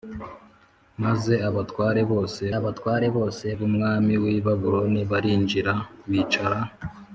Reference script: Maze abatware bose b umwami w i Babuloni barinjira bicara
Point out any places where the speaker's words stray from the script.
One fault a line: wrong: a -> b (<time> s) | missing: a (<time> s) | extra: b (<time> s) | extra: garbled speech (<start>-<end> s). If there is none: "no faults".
extra: abatware bose (2.6 s)